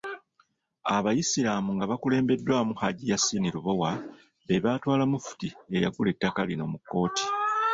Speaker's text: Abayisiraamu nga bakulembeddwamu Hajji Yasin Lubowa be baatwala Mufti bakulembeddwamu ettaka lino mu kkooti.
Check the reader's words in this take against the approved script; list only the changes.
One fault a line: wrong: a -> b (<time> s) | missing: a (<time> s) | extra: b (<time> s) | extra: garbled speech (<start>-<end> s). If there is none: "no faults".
wrong: bakulembeddwamu -> eyagula (5.8 s)